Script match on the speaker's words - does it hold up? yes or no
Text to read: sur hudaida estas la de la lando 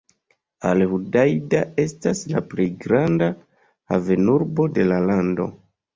no